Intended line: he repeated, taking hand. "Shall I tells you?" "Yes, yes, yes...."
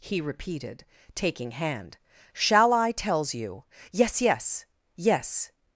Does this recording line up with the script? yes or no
yes